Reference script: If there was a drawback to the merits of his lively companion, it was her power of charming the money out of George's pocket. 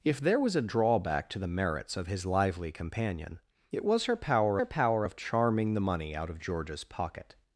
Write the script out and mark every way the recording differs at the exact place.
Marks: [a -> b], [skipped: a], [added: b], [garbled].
If there was a drawback to the merits of his lively companion, it was her power [added: her power] of charming the money out of George's pocket.